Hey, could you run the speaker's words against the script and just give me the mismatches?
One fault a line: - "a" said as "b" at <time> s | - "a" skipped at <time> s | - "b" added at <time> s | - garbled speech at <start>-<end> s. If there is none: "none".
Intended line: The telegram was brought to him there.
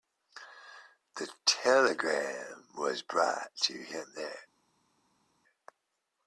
none